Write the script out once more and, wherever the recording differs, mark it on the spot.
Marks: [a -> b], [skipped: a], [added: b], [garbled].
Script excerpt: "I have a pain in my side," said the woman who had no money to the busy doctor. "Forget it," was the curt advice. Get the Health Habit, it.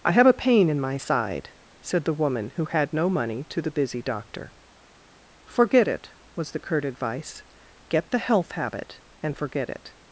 "I have a pain in my side," said the woman who had no money to the busy doctor. "Forget it," was the curt advice. Get the Health Habit, [added: and forget] it.